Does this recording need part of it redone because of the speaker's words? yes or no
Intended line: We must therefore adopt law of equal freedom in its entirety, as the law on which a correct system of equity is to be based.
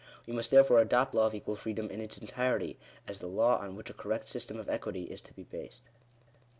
no